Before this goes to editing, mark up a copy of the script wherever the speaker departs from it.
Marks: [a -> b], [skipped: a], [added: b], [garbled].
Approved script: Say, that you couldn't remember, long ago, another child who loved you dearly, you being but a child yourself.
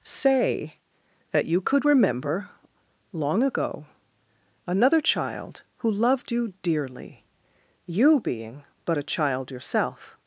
Say, that you [couldn't -> could] remember, long ago, another child who loved you dearly, you being but a child yourself.